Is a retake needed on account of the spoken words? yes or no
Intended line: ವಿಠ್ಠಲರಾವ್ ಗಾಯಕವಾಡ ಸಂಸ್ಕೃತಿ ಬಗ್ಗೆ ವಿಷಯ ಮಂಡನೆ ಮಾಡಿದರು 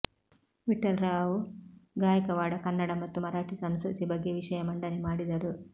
yes